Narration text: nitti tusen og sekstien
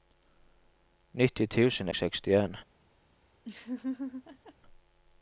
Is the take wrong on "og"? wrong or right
right